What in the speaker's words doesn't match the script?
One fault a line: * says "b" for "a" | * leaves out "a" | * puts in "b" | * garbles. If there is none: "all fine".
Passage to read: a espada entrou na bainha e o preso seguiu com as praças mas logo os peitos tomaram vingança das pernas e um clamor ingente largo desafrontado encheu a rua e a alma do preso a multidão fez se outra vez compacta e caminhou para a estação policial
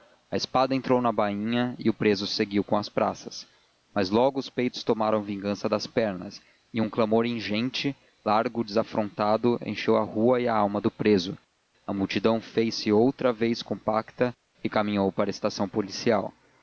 all fine